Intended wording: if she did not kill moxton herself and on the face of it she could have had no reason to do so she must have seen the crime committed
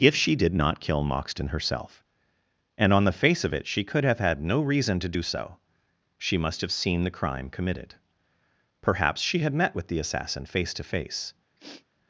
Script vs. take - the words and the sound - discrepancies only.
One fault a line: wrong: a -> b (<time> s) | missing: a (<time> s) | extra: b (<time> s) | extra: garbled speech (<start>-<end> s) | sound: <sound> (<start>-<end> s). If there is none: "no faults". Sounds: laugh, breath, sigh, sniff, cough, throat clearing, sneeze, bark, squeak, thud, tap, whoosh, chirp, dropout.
extra: perhaps she had met with the assassin face to face (8.8 s)
sound: sniff (11.6-11.9 s)